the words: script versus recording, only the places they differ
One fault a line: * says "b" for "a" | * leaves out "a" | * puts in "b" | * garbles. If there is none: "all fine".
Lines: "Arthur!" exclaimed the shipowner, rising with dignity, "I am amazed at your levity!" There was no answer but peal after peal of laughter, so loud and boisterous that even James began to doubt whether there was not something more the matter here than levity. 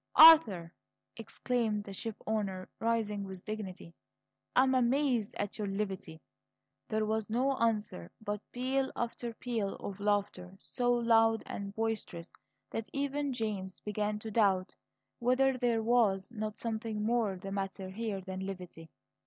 all fine